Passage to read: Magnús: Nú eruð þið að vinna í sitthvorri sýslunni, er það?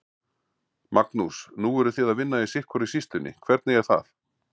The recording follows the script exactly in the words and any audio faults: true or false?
false